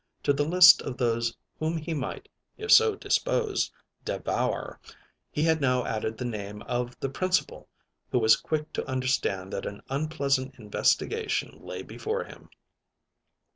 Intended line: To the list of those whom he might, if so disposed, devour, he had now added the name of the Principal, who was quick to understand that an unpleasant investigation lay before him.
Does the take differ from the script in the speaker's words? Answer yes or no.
no